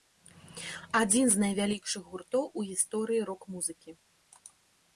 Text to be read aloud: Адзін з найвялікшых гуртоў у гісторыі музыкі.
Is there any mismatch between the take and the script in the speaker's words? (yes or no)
yes